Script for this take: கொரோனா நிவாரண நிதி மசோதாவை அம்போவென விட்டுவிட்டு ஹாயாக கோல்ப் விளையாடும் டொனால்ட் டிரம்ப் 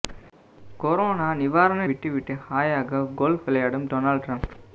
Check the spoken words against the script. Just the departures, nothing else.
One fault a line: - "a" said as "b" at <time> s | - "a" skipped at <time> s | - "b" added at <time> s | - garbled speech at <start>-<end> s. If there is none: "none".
- "நிதி மசோதாவை அம்போவென" skipped at 1.9 s